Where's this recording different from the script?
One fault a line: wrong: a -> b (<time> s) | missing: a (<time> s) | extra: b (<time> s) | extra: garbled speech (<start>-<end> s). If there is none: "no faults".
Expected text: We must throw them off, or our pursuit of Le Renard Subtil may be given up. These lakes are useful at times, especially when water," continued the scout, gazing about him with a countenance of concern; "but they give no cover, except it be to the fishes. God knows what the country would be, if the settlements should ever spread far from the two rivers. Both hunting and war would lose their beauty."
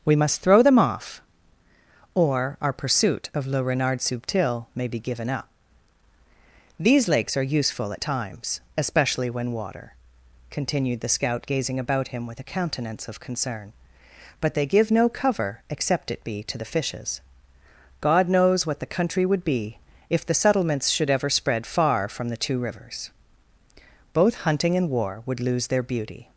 no faults